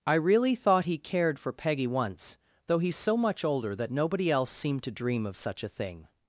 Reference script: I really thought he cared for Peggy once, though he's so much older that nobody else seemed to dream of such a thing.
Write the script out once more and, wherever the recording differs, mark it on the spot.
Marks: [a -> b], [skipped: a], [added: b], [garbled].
I really thought he cared for Peggy once, though he's so much older that nobody else seemed to dream of such a thing.